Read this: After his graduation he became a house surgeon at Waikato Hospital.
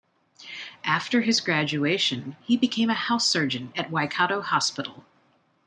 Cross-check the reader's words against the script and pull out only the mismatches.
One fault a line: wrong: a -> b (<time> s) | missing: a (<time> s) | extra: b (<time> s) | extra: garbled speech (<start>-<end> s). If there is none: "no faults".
no faults